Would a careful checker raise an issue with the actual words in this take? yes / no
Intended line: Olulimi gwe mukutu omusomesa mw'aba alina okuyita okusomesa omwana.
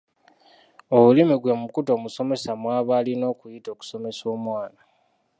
no